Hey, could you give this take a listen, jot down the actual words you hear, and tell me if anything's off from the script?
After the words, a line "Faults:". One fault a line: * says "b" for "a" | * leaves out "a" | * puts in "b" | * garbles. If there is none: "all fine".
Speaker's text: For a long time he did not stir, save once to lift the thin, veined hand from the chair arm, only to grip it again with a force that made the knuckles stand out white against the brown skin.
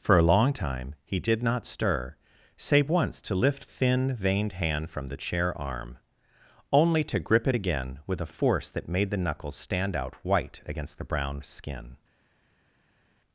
For a long time he did not stir, save once to lift thin, veined hand from the chair arm, only to grip it again with a force that made the knuckles stand out white against the brown skin.
Faults:
* leaves out "the"